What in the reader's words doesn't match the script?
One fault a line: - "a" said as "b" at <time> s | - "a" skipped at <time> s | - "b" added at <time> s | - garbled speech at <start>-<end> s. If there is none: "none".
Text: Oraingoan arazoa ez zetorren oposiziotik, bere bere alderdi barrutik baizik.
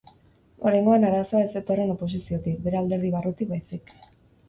- "bere" skipped at 2.8 s